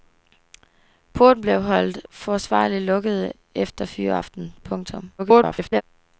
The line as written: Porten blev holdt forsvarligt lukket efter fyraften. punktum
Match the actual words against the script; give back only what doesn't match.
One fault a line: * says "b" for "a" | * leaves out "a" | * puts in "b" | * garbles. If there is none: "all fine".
* garbles